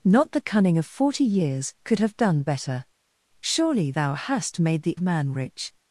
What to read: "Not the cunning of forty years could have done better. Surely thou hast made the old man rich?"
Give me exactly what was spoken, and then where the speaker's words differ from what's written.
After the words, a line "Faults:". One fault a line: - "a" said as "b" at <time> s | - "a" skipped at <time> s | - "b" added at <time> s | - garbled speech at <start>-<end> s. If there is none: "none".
"Not the cunning of forty years could have done better. Surely thou hast made the man rich?"
Faults:
- "old" skipped at 4.9 s